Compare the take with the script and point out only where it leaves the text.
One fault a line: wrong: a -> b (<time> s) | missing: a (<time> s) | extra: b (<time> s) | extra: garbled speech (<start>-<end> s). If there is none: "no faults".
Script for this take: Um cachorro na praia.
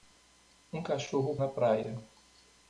no faults